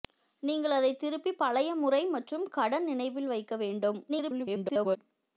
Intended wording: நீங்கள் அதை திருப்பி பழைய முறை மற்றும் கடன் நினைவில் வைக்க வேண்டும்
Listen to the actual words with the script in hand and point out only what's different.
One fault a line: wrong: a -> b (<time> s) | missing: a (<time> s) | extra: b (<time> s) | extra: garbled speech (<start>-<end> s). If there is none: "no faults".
extra: garbled speech (4.1-5.0 s)